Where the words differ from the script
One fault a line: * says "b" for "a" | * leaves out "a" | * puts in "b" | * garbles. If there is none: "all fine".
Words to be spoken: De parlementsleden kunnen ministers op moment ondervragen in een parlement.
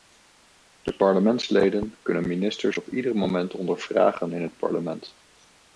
* puts in "ieder"
* says "het" for "een"